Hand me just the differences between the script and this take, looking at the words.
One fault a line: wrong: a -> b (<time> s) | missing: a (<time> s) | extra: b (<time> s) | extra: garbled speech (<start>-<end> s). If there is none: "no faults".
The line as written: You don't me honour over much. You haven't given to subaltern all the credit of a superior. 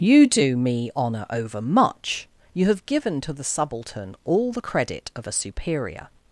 wrong: don't -> do (0.2 s)
wrong: haven't -> have (2.6 s)
extra: the (3.3 s)